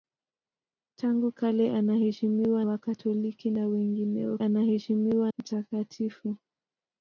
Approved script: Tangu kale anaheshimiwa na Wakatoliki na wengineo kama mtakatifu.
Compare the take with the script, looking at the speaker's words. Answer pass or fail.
fail